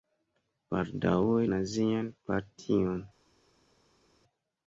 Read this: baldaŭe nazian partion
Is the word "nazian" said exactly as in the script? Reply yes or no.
yes